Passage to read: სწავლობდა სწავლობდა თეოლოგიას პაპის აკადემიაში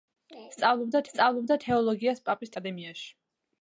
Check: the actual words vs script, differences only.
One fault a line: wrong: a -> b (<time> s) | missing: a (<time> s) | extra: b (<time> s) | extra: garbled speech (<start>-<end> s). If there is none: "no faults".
no faults